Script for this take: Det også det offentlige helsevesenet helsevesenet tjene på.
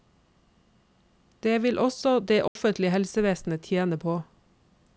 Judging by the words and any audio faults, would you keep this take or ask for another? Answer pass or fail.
fail